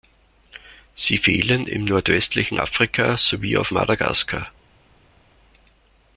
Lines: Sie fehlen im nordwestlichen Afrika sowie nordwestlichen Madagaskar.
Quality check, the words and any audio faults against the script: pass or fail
fail